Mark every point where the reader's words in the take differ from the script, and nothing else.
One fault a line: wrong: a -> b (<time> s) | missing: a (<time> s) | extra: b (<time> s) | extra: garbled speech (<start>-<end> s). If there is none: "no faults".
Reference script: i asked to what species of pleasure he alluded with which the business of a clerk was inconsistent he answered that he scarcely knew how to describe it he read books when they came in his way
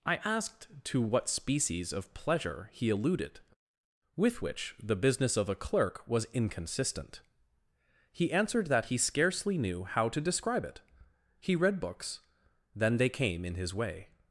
wrong: when -> then (12.8 s)